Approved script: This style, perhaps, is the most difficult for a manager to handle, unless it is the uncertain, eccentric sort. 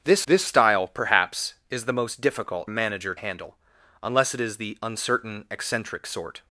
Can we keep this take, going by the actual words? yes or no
no